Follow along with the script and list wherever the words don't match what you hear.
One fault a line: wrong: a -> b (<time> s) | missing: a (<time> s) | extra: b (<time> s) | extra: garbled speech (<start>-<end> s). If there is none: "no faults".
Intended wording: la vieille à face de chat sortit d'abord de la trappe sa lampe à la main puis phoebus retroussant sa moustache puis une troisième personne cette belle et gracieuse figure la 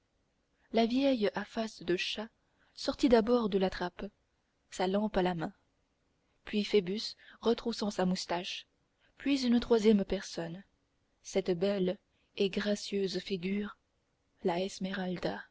no faults